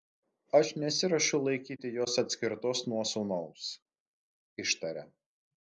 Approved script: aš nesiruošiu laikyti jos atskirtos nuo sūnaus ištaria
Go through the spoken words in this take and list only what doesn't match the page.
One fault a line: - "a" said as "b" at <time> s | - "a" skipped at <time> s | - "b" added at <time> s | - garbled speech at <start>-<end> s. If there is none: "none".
none